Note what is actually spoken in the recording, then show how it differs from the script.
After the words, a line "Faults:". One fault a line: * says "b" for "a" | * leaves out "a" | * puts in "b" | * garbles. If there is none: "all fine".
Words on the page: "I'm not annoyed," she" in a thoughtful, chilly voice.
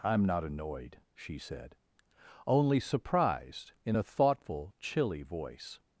"I'm not annoyed," she said, "only surprised" in a thoughtful, chilly voice.
Faults:
* puts in "said only surprised"